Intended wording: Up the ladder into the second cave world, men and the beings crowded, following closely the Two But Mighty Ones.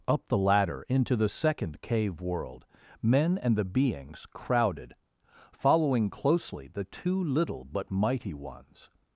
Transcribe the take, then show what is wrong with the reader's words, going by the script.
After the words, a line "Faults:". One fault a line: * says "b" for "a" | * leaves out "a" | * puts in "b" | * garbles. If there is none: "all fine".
Up the ladder into the second cave world, men and the beings crowded, following closely the Two Little but Mighty Ones.
Faults:
* puts in "Little"